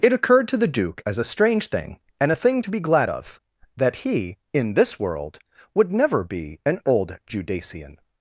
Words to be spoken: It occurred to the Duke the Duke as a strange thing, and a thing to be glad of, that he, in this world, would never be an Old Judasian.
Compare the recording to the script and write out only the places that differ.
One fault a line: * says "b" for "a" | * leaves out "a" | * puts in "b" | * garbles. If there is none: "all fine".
* leaves out "the Duke"